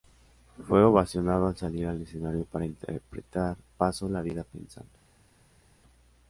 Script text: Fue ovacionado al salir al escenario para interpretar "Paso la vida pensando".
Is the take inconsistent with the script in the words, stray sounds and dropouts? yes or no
no